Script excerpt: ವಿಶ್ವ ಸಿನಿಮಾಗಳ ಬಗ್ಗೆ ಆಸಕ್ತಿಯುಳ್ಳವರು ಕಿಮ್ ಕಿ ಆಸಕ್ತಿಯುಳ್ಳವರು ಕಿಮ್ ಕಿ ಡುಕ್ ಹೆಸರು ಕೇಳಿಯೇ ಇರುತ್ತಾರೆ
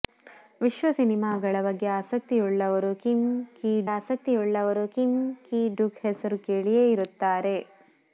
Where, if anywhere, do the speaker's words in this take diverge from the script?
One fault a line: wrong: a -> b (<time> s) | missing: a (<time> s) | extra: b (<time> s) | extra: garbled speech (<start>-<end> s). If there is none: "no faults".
no faults